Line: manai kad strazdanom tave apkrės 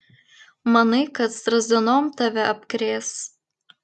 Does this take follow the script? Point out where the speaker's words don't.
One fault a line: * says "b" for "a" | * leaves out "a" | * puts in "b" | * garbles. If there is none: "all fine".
all fine